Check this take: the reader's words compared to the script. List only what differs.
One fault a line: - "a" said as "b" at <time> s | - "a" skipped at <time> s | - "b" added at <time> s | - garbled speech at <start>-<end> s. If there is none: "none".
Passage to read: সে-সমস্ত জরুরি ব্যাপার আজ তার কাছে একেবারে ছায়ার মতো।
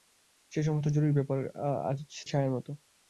- "তার কাছে একেবারে" skipped at 2.0 s